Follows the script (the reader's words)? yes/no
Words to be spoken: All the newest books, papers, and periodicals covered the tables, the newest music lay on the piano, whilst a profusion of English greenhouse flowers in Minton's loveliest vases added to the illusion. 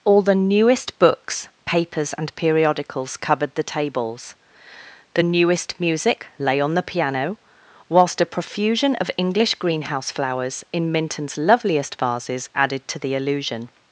yes